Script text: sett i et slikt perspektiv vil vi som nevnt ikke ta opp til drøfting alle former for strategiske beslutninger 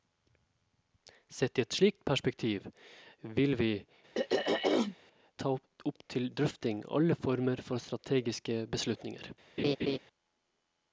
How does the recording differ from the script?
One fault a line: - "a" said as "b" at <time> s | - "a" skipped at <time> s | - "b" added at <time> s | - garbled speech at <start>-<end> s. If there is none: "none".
- "som nevnt ikke" skipped at 3.7 s